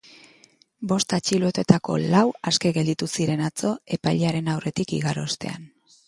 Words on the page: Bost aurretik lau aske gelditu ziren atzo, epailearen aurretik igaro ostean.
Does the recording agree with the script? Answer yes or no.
no